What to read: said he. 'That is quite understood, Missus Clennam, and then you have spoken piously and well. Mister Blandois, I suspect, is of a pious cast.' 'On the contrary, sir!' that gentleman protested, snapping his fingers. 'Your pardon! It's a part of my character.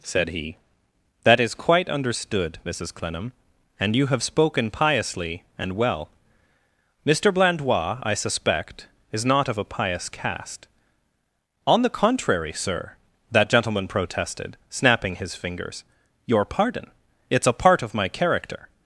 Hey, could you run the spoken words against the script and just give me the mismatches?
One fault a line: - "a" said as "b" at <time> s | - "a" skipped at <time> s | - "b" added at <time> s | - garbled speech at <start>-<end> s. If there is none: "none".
- "then" skipped at 4.0 s
- "not" added at 9.2 s